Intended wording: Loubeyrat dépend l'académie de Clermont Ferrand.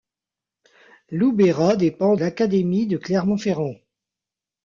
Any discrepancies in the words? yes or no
no